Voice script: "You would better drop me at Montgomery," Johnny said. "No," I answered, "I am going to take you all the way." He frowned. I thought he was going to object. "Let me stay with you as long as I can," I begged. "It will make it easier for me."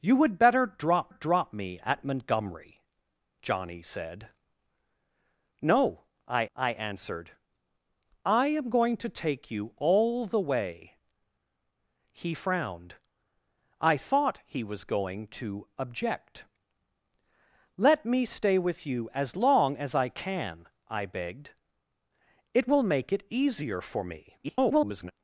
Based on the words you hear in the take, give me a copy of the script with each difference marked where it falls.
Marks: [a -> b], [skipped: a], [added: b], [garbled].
"You would better drop [added: drop] me at Montgomery," Johnny said. "No," I [added: I] answered, "I am going to take you all the way." He frowned. I thought he was going to object. "Let me stay with you as long as I can," I begged. "It will make it easier for me." [garbled]